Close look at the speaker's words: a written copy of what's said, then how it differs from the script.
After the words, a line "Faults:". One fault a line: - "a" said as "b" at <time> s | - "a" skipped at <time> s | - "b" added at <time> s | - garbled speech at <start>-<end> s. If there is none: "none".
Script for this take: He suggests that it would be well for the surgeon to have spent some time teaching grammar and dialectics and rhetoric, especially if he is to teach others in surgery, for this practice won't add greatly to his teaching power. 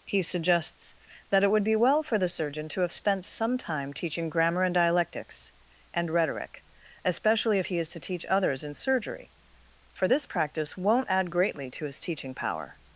He suggests that it would be well for the surgeon to have spent some time teaching grammar and dialectics and rhetoric, especially if he is to teach others in surgery, for this practice won't add greatly to his teaching power.
Faults:
none